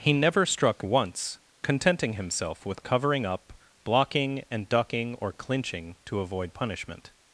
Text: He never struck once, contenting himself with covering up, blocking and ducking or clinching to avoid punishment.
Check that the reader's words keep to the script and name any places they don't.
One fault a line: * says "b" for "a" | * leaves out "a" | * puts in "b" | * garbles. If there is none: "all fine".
all fine